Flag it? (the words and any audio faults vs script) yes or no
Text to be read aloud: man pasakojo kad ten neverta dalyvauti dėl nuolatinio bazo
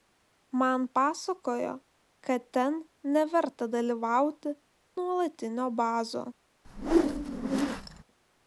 yes